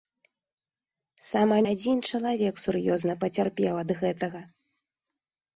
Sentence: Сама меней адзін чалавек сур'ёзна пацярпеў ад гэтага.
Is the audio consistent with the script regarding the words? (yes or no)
no